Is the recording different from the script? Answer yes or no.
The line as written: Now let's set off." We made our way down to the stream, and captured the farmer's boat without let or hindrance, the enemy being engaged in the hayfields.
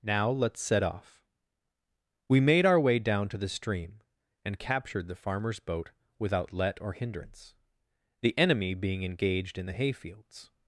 no